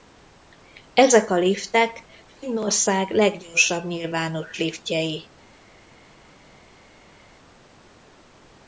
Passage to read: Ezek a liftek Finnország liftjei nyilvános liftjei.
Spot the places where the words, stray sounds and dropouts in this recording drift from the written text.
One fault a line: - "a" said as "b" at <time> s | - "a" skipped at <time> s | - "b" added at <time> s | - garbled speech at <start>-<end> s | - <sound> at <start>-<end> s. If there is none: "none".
- "liftjei" said as "leggyorsabb" at 3.1 s